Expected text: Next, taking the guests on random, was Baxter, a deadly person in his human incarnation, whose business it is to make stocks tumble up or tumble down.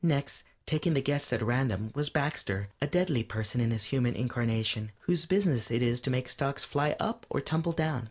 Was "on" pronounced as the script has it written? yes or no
no